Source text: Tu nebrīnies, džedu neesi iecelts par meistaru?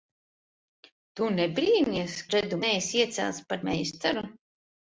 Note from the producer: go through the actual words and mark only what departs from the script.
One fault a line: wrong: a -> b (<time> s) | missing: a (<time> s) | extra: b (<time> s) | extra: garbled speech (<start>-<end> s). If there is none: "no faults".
no faults